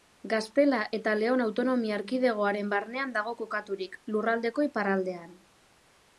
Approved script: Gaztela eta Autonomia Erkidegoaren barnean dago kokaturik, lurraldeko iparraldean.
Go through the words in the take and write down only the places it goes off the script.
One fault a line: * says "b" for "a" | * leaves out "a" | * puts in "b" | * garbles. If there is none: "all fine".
* puts in "Leon"